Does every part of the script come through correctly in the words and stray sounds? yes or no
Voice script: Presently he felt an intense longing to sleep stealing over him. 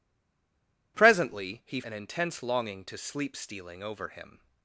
no